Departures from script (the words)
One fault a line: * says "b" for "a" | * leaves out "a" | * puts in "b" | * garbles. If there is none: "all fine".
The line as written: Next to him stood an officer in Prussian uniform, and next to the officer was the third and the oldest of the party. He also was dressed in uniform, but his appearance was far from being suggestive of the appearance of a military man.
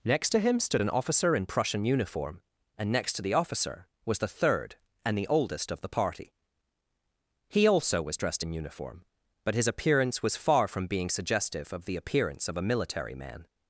all fine